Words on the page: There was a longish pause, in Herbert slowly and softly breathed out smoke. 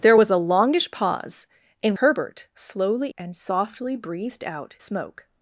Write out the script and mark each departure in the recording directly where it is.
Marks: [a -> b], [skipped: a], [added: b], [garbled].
There was a longish pause, in Herbert slowly and softly breathed out smoke.